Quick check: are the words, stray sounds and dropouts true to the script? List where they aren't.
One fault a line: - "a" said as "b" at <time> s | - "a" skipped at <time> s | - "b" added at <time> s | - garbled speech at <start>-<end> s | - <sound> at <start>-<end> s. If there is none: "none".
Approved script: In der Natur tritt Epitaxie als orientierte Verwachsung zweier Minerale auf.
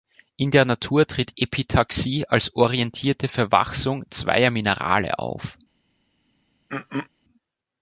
- throat clearing at 6.7-7.1 s